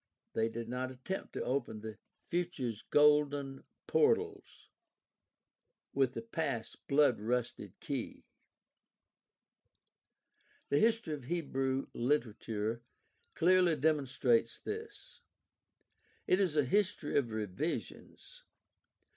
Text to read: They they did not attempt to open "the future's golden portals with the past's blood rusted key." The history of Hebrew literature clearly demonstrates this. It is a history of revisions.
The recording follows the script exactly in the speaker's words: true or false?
false